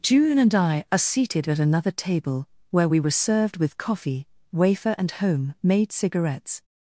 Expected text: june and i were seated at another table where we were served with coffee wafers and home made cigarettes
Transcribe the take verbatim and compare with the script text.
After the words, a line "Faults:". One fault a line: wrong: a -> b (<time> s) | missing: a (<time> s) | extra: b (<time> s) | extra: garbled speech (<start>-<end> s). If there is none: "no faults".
june and i are seated at another table where we were served with coffee wafer and home made cigarettes
Faults:
wrong: were -> are (0.9 s)
wrong: wafers -> wafer (4.5 s)